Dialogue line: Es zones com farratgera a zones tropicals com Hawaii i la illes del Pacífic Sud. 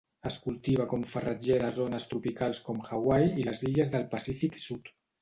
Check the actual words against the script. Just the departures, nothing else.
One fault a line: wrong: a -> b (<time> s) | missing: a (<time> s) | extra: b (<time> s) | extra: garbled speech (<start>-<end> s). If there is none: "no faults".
wrong: zones -> cultiva (0.4 s)
wrong: la -> les (3.5 s)